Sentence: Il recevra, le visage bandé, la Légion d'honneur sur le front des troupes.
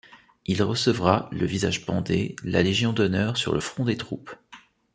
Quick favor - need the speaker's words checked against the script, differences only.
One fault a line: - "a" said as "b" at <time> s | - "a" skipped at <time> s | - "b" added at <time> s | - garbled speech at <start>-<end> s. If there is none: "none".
none